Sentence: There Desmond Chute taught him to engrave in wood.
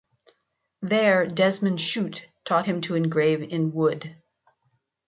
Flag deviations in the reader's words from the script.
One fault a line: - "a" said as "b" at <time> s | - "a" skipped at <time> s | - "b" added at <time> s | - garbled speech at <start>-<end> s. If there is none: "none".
none